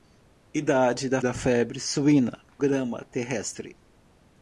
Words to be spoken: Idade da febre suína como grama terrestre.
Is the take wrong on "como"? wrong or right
wrong